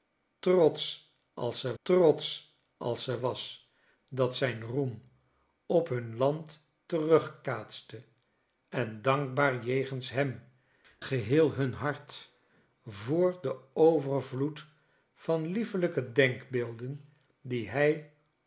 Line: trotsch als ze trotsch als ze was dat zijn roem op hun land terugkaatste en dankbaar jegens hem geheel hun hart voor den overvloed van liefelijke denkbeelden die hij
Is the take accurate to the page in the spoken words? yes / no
yes